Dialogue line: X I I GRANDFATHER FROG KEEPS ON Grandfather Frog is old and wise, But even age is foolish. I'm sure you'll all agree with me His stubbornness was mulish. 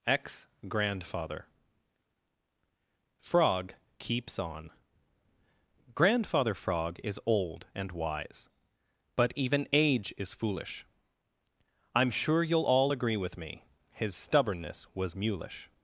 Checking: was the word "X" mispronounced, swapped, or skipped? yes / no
yes